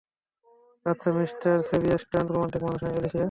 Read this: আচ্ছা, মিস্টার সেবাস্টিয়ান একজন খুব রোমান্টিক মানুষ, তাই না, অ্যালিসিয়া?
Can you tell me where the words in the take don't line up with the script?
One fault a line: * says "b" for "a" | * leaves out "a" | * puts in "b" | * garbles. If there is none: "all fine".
* leaves out "একজন খুব"
* leaves out "তাই"